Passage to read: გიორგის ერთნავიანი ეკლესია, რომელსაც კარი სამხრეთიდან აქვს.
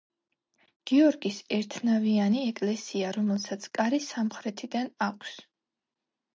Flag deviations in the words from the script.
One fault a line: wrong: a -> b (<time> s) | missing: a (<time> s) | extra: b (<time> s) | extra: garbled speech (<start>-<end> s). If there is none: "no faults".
no faults